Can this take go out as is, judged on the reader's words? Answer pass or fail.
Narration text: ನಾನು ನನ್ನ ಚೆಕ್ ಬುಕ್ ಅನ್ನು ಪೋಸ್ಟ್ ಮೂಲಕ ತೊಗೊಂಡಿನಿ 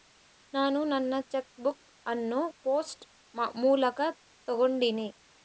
pass